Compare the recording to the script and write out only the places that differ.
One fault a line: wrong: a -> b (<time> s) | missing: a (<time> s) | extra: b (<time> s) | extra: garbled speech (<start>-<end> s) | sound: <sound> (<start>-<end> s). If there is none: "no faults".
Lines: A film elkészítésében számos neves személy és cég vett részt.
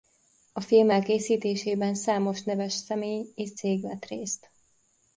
no faults